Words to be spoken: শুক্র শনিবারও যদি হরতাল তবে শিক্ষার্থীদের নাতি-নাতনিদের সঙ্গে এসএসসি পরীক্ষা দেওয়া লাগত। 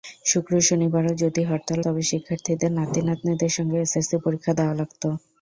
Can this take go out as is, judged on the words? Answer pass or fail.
pass